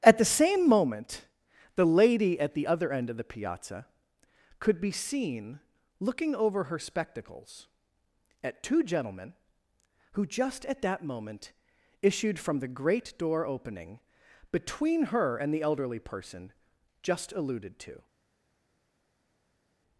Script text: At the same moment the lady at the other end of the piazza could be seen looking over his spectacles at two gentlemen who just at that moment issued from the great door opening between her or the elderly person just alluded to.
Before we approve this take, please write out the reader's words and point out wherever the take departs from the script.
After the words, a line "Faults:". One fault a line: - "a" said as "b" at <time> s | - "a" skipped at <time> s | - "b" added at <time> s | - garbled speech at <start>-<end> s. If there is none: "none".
At the same moment the lady at the other end of the piazza could be seen looking over her spectacles at two gentlemen who just at that moment issued from the great door opening between her and the elderly person just alluded to.
Faults:
- "his" said as "her" at 6.7 s
- "or" said as "and" at 15.4 s